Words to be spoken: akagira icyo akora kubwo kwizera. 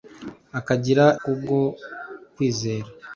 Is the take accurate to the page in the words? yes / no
no